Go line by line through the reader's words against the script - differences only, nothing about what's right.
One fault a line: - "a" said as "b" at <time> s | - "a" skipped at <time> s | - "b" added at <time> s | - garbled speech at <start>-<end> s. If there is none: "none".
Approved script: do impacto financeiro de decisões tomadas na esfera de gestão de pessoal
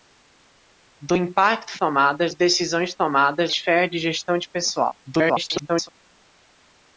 - "financeiro" said as "tomadas" at 1.8 s
- "na" skipped at 3.5 s
- garbled speech at 5.0-5.9 s